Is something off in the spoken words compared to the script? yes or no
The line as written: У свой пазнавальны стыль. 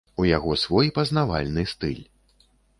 yes